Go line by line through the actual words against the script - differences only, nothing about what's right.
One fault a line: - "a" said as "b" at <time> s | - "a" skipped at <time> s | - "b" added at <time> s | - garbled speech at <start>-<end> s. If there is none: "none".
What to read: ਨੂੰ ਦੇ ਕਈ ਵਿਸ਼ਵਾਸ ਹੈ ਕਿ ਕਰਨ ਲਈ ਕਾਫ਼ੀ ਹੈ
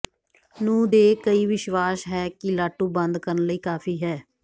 - "ਲਾਟੂ ਬੰਦ" added at 2.5 s